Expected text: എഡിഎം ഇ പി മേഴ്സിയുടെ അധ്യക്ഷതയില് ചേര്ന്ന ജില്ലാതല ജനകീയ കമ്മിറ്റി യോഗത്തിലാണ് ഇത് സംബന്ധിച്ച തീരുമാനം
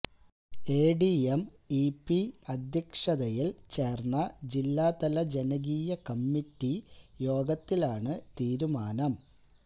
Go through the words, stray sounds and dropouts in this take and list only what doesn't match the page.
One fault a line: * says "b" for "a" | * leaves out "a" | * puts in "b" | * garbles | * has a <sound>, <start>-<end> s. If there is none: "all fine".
* leaves out "മേഴ്സിയുടെ"
* leaves out "ഇത് സംബന്ധിച്ച"